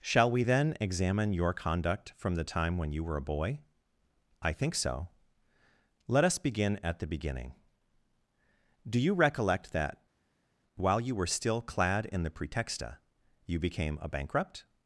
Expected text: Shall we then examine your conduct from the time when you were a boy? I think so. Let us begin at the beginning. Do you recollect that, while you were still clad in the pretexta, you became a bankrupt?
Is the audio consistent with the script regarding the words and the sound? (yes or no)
yes